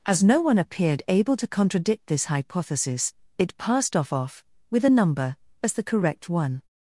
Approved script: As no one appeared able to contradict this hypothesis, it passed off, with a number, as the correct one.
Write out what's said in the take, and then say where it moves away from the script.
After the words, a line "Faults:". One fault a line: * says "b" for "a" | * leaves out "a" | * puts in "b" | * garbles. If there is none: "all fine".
As no one appeared able to contradict this hypothesis, it passed off off, with a number, as the correct one.
Faults:
* puts in "off"